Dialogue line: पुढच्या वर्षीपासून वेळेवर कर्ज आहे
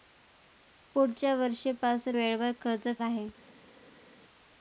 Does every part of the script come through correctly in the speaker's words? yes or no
yes